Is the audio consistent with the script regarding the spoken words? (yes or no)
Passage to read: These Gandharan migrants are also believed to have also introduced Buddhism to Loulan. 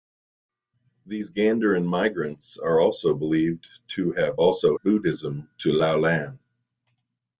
no